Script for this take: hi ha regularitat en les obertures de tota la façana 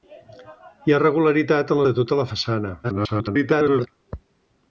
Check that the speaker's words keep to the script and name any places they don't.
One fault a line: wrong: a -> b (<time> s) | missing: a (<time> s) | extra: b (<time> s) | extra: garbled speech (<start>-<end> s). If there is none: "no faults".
missing: les obertures (1.8 s)
extra: garbled speech (2.8-3.9 s)